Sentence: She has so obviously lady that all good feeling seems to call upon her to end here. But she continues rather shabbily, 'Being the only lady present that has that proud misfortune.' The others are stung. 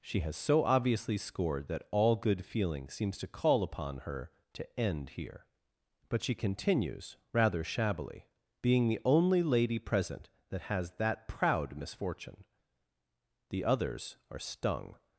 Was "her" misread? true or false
false